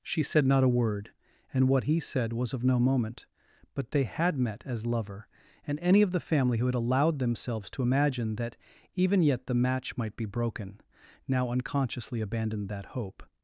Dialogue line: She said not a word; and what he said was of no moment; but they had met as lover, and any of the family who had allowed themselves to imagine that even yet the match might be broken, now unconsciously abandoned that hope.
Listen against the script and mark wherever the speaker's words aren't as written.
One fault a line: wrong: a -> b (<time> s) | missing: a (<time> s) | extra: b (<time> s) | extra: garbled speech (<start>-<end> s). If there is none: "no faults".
no faults